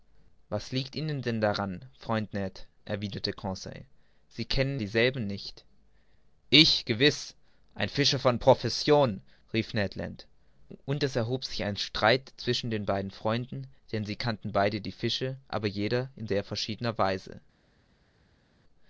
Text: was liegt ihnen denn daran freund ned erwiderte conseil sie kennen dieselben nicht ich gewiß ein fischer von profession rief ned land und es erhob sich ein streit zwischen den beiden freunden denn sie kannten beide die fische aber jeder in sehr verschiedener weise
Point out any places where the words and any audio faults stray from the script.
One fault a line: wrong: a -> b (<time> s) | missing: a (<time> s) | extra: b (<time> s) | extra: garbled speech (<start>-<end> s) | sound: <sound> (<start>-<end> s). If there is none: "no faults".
no faults